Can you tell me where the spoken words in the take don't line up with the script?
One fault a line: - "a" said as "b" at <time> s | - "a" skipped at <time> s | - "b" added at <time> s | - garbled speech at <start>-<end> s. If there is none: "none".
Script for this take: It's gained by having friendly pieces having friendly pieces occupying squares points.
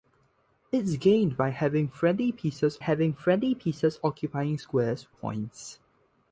none